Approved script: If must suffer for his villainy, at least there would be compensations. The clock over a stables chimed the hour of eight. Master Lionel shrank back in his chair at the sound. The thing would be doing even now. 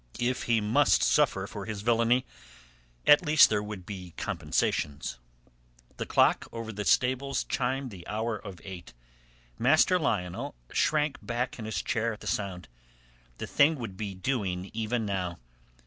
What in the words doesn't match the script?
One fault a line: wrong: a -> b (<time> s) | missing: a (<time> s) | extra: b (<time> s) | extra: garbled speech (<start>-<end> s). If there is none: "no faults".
extra: he (0.5 s)
wrong: a -> the (6.7 s)